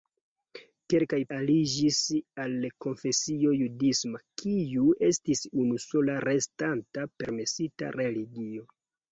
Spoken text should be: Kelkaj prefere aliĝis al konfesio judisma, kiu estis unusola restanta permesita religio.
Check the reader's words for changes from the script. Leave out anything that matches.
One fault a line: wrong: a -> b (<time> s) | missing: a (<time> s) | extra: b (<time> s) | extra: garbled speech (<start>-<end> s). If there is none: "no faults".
missing: prefere (1.2 s)